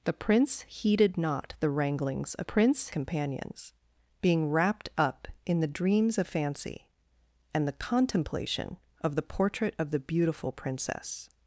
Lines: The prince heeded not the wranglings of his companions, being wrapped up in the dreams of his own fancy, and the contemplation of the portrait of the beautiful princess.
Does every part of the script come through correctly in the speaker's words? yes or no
no